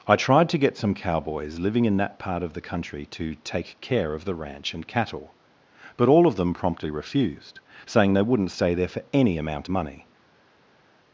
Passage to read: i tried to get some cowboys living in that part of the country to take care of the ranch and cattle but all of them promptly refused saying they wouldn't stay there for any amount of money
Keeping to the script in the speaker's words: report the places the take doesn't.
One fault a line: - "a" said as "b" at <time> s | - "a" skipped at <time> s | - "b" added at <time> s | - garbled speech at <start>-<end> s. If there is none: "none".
- "of" skipped at 9.7 s